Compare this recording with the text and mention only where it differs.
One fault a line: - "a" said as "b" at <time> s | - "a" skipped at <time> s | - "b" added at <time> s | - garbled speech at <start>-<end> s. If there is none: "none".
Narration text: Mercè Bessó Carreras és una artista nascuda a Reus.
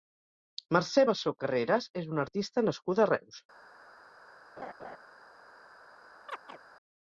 none